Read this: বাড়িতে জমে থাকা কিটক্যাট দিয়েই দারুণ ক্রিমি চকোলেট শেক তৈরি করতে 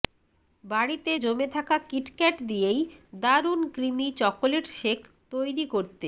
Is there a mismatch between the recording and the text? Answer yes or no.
no